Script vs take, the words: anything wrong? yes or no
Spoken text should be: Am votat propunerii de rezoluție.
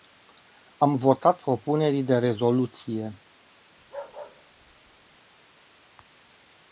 no